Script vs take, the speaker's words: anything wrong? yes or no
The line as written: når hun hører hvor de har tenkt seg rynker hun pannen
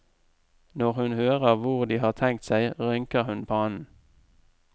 no